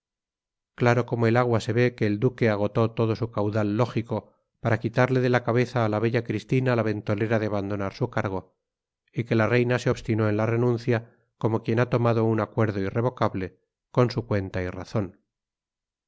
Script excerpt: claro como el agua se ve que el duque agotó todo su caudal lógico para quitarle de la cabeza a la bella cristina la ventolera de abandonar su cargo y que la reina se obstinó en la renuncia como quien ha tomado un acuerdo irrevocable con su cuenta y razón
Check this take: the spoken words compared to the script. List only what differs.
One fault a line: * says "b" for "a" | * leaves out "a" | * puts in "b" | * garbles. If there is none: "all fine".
all fine